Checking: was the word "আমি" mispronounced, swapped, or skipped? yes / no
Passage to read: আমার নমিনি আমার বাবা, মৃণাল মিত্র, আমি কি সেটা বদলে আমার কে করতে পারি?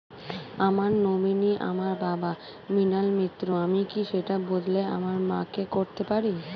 no